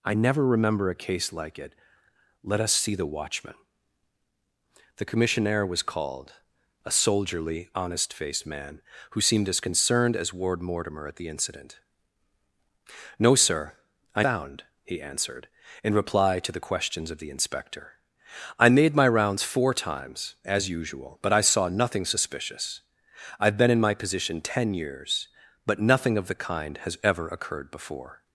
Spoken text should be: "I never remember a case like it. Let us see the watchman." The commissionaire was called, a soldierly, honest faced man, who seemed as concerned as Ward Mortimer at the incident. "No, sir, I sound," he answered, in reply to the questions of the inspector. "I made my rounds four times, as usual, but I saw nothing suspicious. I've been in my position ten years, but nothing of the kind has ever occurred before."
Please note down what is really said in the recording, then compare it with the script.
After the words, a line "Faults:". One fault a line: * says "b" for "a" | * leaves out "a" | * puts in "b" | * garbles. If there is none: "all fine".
"I never remember a case like it. Let us see the watchman." The commissionaire was called, a soldierly, honest faced man, who seemed as concerned as Ward Mortimer at the incident. "No, sir, I sound," he answered, in reply to the questions of the inspector. "I made my rounds four times, as usual, but I saw nothing suspicious. I've been in my position ten years, but nothing of the kind has ever occurred before."
Faults:
all fine